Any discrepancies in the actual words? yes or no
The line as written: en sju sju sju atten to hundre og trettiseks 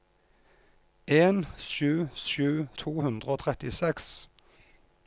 yes